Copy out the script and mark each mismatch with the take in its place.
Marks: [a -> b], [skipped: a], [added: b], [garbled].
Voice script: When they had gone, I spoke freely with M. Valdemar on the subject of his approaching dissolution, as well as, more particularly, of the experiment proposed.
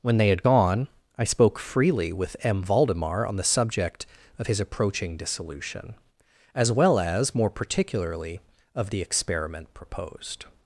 When they had gone, I spoke freely with M. Valdemar on the subject of his approaching dissolution, as well as, more particularly, of the experiment proposed.